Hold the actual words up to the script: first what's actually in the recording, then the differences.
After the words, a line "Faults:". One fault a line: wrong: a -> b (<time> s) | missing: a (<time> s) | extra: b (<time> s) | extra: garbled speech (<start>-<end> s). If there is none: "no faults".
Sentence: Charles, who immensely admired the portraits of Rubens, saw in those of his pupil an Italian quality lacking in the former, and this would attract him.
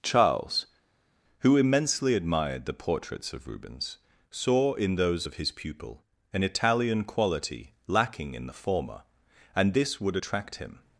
Charles, who immensely admired the portraits of Rubens, saw in those of his pupil an Italian quality lacking in the former, and this would attract him.
Faults:
no faults